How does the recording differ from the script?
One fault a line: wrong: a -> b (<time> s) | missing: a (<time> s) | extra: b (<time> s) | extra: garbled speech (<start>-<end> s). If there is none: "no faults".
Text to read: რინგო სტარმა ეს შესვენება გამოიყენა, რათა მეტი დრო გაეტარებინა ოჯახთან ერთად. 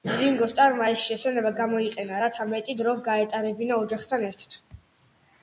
no faults